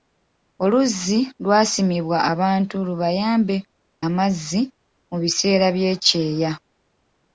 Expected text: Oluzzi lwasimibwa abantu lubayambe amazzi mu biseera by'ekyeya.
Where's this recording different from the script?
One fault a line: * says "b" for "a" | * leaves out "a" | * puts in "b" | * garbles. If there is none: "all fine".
all fine